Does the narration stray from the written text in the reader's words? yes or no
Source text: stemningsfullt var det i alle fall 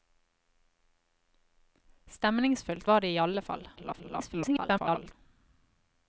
yes